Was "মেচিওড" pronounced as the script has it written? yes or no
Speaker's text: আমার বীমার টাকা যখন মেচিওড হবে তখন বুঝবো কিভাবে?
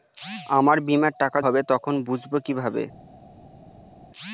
no